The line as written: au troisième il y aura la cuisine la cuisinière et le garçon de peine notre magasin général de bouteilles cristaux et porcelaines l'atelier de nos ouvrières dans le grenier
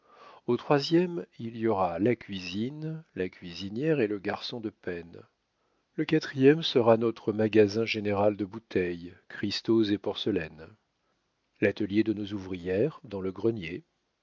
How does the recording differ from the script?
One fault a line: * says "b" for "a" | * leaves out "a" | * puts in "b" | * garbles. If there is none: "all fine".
* puts in "le quatrième sera"